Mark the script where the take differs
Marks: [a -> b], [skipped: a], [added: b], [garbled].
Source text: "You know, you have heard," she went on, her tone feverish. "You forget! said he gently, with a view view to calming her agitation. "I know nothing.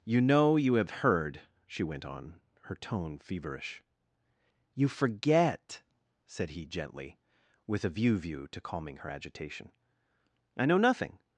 "You know, you have heard," she went on, her tone feverish. "You forget! said he gently, with a view view to calming her agitation. "I know nothing.